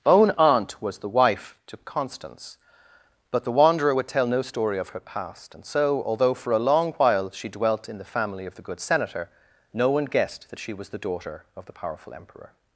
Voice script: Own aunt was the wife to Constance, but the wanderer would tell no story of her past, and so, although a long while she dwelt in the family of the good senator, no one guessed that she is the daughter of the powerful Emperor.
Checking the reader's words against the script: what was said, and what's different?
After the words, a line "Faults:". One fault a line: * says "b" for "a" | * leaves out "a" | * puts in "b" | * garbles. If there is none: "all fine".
Own aunt was the wife to Constance, but the wanderer would tell no story of her past, and so, although for a long while she dwelt in the family of the good senator, no one guessed that she was the daughter of the powerful Emperor.
Faults:
* puts in "for"
* says "was" for "is"